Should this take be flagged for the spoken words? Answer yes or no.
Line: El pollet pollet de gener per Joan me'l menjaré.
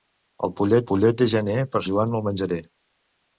no